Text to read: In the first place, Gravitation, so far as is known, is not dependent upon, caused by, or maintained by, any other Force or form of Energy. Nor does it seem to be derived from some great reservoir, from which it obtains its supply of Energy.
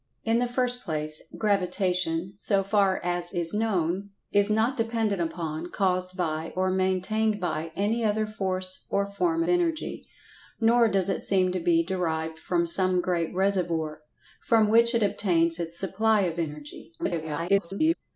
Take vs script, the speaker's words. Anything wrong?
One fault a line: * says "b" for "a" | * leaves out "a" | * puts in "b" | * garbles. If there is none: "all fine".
* leaves out "of"
* garbles